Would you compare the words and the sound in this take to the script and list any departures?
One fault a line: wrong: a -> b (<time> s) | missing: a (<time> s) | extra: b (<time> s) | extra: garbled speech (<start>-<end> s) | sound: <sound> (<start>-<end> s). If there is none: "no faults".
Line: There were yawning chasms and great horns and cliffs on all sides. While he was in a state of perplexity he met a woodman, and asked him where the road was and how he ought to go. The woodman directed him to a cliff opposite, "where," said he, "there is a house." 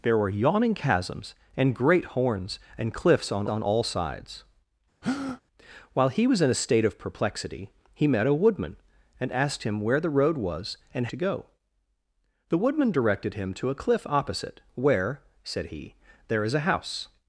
extra: on (3.5 s)
sound: breath (5.0-5.4 s)
missing: how he ought (11.1 s)